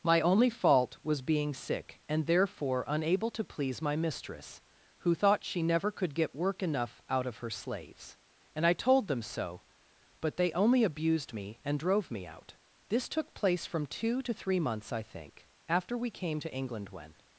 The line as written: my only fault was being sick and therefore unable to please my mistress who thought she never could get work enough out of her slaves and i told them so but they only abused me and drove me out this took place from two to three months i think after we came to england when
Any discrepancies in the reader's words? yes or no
no